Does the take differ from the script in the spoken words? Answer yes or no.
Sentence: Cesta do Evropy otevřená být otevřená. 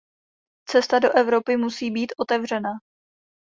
yes